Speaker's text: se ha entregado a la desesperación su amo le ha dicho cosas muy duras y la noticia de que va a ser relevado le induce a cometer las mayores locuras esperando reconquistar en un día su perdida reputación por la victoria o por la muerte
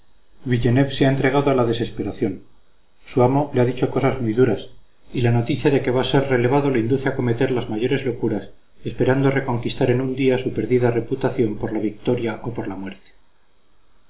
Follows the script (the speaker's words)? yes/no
yes